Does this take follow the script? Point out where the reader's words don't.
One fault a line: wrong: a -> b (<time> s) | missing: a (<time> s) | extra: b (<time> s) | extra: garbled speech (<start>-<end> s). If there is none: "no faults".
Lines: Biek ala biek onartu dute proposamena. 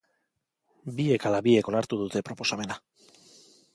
no faults